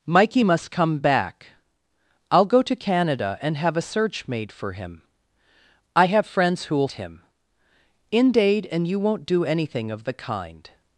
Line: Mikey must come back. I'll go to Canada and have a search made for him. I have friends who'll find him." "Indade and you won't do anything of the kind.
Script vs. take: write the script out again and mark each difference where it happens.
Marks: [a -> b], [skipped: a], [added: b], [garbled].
Mikey must come back. I'll go to Canada and have a search made for him. I have friends who'll [skipped: find] him." "Indade and you won't do anything of the kind.